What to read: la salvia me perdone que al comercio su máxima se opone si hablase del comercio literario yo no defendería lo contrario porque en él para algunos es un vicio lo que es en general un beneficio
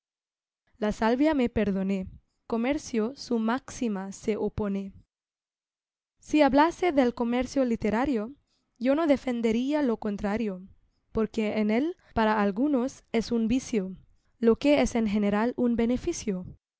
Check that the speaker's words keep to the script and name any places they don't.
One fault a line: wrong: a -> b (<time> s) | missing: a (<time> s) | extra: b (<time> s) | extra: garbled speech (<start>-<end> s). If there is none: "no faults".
missing: que al (2.1 s)